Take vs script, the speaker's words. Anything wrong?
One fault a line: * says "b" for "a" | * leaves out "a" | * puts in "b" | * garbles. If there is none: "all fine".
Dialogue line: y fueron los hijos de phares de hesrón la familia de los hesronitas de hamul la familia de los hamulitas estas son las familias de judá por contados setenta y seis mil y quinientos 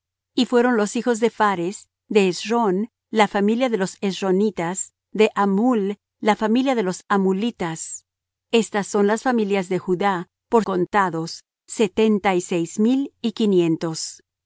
all fine